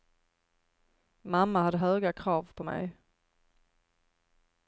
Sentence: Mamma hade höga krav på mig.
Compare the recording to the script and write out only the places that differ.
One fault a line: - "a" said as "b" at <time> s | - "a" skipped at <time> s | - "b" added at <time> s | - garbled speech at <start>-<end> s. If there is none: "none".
none